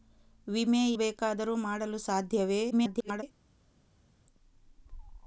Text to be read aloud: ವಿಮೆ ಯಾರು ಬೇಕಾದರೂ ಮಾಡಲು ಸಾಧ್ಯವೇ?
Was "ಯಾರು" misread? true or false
true